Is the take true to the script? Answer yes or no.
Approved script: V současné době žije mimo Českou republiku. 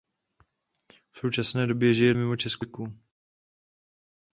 yes